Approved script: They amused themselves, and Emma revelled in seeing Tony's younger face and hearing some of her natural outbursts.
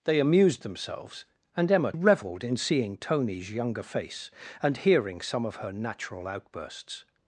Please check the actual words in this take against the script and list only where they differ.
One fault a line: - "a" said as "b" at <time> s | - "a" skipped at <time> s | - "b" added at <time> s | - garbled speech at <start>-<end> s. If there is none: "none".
none